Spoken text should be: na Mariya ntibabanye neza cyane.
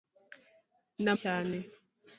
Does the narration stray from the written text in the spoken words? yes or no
yes